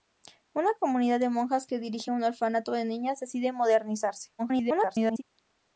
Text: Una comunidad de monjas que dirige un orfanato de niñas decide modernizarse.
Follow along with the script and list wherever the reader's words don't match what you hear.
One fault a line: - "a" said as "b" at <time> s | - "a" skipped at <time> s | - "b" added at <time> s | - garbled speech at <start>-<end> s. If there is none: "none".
- garbled speech at 4.4-5.2 s